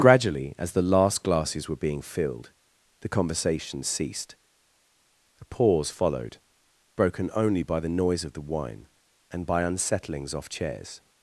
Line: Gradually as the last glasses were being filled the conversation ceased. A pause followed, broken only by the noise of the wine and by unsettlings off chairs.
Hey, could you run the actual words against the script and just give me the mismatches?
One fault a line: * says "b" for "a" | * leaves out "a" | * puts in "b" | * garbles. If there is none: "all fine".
all fine